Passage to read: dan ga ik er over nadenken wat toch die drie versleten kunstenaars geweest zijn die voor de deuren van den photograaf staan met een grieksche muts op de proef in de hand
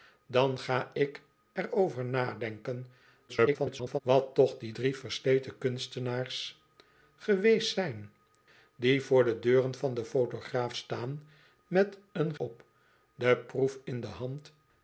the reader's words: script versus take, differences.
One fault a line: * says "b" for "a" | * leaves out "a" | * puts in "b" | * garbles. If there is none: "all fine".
* garbles
* leaves out "grieksche muts"